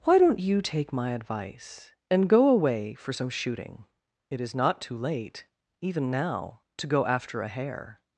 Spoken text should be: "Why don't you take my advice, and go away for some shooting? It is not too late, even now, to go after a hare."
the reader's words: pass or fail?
pass